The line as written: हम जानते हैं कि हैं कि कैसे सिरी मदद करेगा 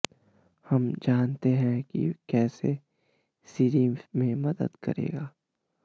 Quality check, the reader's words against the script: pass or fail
fail